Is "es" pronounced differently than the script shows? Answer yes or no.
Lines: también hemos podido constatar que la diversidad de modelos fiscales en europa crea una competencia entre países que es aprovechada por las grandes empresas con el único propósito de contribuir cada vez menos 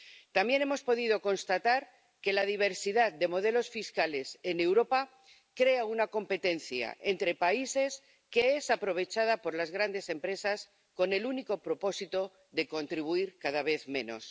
no